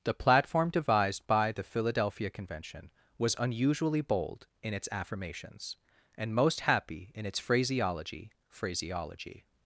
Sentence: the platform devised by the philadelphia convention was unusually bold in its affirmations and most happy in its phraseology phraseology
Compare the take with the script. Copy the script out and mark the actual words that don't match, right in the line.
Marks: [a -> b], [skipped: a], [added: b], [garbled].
the platform devised by the philadelphia convention was unusually bold in its affirmations and most happy in its phraseology phraseology